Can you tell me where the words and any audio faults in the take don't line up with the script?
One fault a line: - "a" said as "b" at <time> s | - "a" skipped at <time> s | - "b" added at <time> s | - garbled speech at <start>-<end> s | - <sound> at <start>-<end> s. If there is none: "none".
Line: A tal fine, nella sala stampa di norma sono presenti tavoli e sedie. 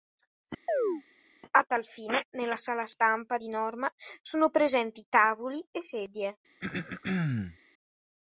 - chirp at 0.7-1.0 s
- throat clearing at 6.6-7.6 s